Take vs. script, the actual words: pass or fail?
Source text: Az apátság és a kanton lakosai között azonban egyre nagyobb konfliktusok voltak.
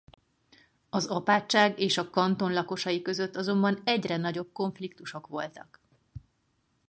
pass